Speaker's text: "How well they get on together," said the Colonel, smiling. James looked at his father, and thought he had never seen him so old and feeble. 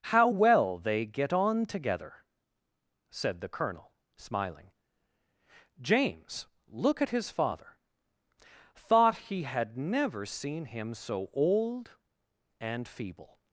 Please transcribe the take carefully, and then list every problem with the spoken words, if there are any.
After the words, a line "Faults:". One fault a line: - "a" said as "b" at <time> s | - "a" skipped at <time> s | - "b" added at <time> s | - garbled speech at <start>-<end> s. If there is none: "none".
"How well they get on together," said the Colonel, smiling. James look at his father, thought he had never seen him so old and feeble.
Faults:
- "looked" said as "look" at 6.7 s
- "and" skipped at 7.8 s